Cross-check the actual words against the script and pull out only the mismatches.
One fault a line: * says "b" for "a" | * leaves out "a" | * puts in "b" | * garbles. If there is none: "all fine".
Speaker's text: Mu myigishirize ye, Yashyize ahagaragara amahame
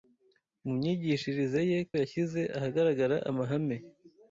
all fine